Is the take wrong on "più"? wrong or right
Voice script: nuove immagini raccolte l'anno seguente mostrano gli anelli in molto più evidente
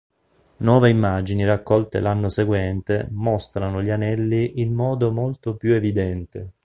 right